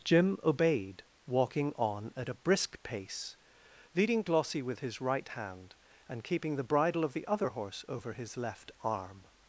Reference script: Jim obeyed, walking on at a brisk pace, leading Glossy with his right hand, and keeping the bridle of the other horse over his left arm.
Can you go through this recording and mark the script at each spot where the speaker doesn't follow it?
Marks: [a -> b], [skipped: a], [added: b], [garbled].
Jim obeyed, walking on at a brisk pace, leading Glossy with his right hand, and keeping the bridle of the other horse over his left arm.